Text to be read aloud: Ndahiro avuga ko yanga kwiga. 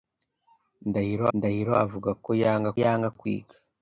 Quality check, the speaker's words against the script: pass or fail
fail